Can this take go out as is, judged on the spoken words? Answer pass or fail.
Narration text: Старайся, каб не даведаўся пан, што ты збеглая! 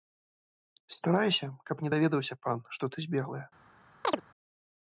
pass